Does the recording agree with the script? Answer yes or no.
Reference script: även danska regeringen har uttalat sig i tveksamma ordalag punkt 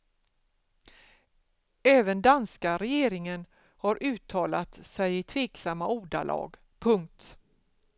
yes